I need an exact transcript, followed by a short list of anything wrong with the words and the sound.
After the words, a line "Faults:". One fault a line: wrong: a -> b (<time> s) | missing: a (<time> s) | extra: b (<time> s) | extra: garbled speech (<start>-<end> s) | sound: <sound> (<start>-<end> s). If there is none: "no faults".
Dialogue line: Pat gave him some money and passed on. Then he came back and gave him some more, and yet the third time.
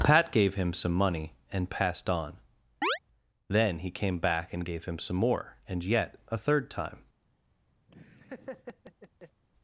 Pat gave him some money and passed on. Then he came back and gave him some more, and yet a third time.
Faults:
sound: chirp (2.8-3.0 s)
wrong: the -> a (6.3 s)
sound: laugh (7.9-9.4 s)